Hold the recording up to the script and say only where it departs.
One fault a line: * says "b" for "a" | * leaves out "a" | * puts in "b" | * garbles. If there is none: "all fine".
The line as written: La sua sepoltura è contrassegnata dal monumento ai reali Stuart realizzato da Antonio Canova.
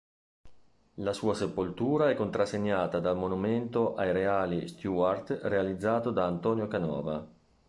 all fine